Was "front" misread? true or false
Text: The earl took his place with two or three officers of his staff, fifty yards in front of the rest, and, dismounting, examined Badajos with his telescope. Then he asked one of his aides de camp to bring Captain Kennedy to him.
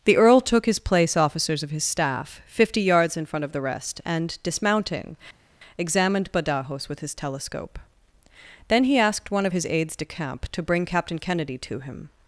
false